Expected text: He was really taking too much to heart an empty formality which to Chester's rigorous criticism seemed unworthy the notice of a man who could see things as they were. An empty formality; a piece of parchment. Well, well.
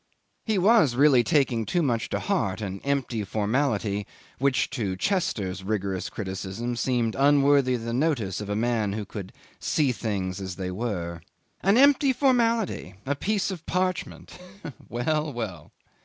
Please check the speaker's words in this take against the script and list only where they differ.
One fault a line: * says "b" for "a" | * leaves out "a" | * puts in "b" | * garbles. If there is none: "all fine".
all fine